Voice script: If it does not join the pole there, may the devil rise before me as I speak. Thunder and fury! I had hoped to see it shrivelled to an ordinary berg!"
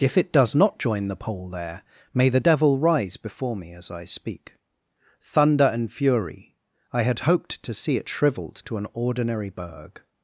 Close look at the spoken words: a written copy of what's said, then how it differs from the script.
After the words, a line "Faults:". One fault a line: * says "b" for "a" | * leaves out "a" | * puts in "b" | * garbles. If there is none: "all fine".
If it does not join the pole there, may the devil rise before me as I speak. Thunder and fury! I had hoped to see it shrivelled to an ordinary berg!"
Faults:
all fine